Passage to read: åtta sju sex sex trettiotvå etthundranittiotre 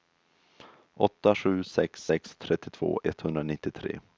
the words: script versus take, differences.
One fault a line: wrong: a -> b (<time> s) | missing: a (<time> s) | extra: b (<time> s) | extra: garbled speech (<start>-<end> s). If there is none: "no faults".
no faults